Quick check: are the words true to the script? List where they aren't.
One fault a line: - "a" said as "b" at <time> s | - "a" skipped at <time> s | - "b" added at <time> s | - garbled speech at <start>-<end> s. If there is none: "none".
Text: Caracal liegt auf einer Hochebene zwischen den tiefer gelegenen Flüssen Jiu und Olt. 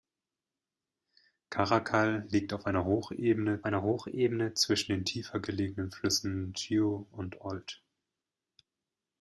- "einer Hochebene" added at 3.6 s